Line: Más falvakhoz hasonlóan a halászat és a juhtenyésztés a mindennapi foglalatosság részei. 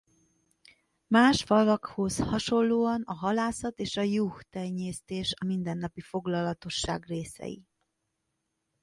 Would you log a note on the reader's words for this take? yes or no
no